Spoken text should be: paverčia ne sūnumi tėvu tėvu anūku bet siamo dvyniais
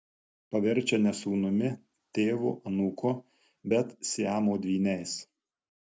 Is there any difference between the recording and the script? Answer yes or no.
yes